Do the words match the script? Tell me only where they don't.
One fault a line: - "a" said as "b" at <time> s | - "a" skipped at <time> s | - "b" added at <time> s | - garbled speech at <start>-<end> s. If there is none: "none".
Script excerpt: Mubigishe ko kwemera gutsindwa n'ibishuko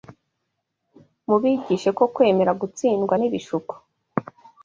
none